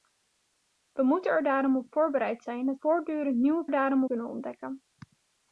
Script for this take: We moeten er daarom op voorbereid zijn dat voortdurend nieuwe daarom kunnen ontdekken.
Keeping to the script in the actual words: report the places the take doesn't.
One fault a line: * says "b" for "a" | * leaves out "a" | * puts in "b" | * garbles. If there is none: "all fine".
all fine